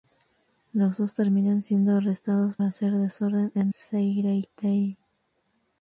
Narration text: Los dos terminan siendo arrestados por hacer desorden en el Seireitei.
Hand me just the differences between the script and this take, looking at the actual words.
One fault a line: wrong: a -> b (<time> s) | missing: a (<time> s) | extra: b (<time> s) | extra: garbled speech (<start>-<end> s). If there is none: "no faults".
missing: por (2.6 s)
missing: el (3.7 s)